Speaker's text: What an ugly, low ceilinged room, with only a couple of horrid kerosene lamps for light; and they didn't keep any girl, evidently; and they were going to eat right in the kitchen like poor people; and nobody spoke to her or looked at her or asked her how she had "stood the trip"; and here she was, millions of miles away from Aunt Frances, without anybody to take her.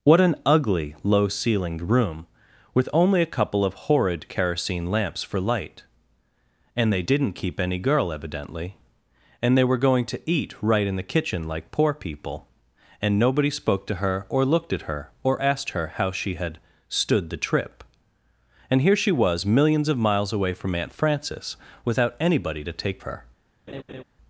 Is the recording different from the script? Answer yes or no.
no